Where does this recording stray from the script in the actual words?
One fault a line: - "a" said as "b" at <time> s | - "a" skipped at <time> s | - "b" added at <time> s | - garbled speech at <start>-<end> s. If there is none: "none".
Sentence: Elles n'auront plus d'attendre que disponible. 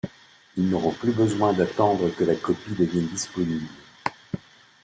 - "Elles" said as "Ils" at 0.6 s
- "besoin" added at 1.1 s
- "la copie devienne" added at 2.2 s